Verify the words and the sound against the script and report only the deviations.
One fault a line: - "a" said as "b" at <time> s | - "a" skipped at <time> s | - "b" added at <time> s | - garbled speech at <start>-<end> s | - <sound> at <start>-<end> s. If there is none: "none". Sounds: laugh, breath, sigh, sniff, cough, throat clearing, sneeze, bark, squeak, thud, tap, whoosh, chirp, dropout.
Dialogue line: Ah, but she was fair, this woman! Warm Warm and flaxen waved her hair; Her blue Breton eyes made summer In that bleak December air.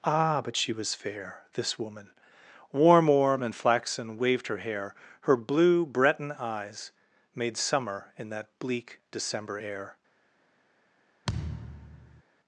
- thud at 11.3-12.2 s